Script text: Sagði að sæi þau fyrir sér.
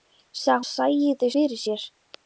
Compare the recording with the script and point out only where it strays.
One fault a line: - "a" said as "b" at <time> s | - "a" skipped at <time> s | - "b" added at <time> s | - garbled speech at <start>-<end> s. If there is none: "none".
none